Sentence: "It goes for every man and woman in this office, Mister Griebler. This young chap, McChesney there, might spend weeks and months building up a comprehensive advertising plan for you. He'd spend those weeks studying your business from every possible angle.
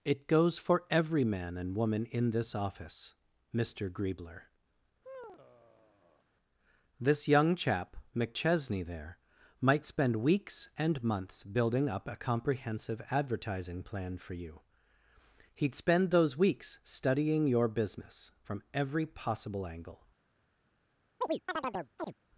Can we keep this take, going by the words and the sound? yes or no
no